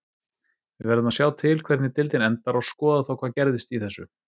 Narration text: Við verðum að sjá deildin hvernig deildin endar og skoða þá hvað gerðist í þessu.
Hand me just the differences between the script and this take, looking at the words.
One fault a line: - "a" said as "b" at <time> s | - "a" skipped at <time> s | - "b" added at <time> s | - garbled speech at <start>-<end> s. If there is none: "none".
- "deildin" said as "til" at 1.4 s